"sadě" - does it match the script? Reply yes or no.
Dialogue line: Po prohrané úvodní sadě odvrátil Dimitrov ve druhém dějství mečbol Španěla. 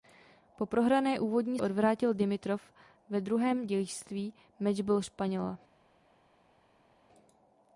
no